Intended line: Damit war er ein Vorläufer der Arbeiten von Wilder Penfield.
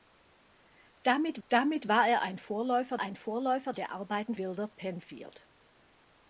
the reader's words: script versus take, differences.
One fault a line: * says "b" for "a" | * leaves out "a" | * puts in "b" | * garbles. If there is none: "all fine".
* puts in "damit"
* puts in "ein Vorläufer"
* leaves out "von"